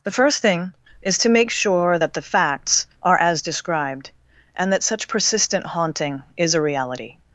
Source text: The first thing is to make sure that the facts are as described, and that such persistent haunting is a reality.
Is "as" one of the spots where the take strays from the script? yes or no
no